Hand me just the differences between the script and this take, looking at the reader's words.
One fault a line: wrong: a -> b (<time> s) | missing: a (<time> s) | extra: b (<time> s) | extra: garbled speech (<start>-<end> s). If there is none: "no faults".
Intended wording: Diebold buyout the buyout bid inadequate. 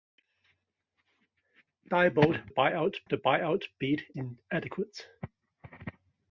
no faults